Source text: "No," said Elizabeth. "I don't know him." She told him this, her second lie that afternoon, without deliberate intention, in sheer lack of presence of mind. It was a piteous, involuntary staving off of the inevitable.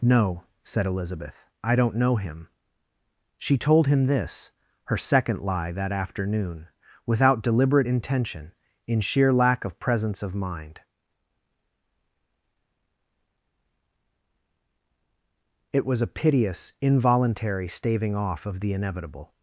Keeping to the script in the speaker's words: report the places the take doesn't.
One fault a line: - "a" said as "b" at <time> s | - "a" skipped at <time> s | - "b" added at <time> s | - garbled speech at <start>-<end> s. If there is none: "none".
none